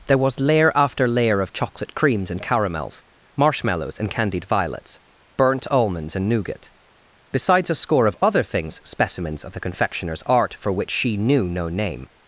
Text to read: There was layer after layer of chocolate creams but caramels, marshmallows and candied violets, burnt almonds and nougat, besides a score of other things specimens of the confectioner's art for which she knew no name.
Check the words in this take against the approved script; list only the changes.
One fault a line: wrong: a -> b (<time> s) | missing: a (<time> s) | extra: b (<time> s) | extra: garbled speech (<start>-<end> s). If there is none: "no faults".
wrong: but -> and (2.3 s)